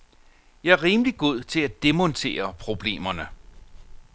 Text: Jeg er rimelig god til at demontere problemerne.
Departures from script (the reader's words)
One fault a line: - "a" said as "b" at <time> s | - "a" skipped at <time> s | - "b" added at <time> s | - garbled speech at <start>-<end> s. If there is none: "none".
none